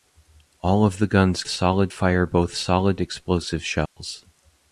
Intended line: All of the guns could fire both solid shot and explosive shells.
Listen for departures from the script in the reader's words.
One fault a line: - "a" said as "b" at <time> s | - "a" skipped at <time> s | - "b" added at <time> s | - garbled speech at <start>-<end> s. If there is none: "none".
- "could" said as "solid" at 1.5 s
- "shot and" skipped at 3.0 s